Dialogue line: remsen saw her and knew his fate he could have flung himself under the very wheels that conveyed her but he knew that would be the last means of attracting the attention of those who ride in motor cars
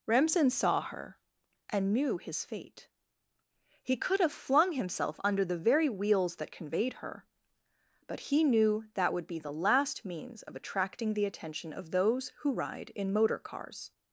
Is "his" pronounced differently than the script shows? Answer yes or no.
no